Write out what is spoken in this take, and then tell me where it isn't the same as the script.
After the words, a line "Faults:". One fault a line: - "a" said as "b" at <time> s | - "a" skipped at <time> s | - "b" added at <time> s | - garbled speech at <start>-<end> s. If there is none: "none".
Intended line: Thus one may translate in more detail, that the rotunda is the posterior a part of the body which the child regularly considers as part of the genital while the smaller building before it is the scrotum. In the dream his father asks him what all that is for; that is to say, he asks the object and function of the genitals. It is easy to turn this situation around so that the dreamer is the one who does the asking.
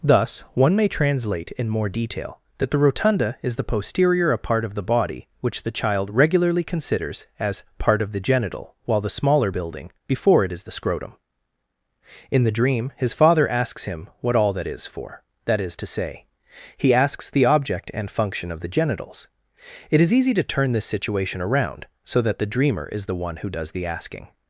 Thus one may translate in more detail, that the rotunda is the posterior a part of the body which the child regularly considers as part of the genital while the smaller building before it is the scrotum. In the dream his father asks him what all that is for; that is to say, he asks the object and function of the genitals. It is easy to turn this situation around so that the dreamer is the one who does the asking.
Faults:
none